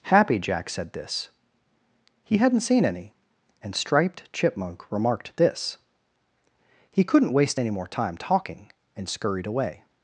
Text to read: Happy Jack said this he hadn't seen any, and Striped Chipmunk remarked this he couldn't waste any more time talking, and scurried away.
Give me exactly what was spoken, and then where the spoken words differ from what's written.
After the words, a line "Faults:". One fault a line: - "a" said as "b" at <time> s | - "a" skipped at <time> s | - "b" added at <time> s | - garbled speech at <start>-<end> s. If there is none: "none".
Happy Jack said this he hadn't seen any, and Striped Chipmunk remarked this he couldn't waste any more time talking, and scurried away.
Faults:
none